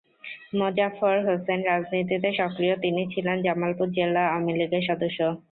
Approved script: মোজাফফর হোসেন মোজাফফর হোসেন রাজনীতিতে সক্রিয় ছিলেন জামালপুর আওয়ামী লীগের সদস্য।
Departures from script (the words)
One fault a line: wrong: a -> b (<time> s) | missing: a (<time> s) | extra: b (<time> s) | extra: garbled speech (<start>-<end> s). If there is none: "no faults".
missing: মোজাফফর হোসেন (1.6 s)
extra: তিনি (2.8 s)
extra: জেলা (4.0 s)